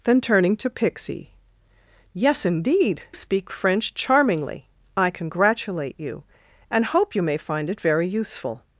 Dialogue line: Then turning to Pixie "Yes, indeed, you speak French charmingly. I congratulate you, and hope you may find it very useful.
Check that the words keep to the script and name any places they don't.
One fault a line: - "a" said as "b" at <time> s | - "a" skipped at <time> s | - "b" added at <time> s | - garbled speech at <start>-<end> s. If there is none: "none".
- "you" skipped at 3.0 s